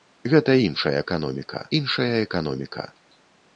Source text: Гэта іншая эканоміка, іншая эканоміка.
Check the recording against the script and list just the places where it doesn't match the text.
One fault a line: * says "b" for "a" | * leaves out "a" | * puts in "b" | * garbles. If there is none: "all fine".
all fine